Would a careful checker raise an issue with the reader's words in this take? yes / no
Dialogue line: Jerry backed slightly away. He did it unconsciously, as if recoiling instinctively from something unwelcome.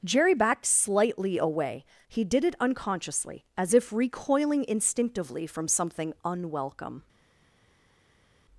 no